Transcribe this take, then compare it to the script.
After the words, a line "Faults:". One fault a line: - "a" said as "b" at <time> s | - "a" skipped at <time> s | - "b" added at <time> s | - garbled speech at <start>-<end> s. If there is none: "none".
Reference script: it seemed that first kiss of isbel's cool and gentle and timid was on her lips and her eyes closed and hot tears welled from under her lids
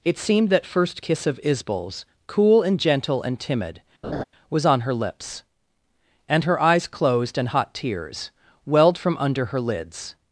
it seemed that first kiss of isbel's cool and gentle and timid was on her lips and her eyes closed and hot tears welled from under her lids
Faults:
none